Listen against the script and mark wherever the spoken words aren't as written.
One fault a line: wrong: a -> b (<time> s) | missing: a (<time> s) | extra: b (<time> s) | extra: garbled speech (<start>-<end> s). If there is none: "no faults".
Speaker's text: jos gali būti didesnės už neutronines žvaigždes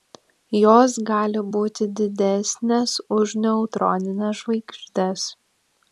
no faults